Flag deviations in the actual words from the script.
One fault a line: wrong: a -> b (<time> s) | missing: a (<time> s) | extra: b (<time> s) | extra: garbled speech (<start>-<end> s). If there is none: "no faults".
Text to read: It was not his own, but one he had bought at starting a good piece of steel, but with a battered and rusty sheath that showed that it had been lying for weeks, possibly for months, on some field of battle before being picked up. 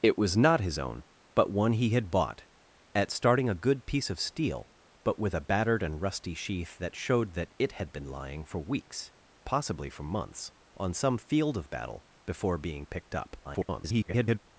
extra: garbled speech (13.4-14.4 s)